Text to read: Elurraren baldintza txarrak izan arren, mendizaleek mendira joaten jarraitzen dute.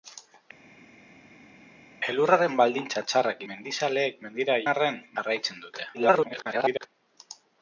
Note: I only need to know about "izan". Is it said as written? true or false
false